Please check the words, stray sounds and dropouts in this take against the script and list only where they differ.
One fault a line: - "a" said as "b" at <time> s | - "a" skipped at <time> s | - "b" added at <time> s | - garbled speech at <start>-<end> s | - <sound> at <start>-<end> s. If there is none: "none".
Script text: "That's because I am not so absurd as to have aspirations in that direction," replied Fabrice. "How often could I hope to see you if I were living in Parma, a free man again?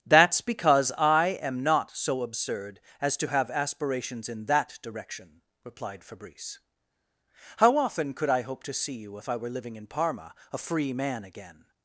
none